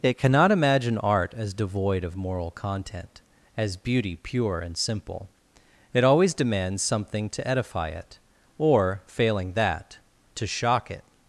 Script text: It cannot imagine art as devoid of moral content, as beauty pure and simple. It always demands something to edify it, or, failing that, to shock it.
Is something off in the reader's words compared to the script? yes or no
no